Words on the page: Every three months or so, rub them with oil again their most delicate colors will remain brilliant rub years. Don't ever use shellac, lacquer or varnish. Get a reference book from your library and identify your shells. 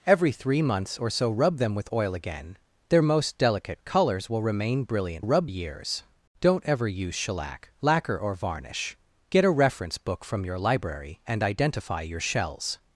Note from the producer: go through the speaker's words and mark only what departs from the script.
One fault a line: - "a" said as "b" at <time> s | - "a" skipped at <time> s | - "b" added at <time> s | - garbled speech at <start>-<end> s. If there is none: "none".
none